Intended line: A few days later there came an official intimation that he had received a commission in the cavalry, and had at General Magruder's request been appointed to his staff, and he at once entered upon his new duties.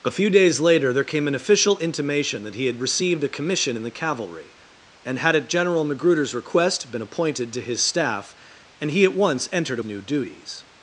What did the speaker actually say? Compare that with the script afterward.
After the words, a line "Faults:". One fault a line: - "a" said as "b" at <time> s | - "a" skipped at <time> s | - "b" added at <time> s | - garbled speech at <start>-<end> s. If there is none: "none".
A few days later there came an official intimation that he had received a commission in the cavalry, and had at General Magruder's request been appointed to his staff, and he at once entered new duties.
Faults:
- "upon his" skipped at 9.8 s